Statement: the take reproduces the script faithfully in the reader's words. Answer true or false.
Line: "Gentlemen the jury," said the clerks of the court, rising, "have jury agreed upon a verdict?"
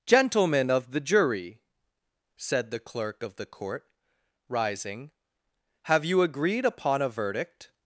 false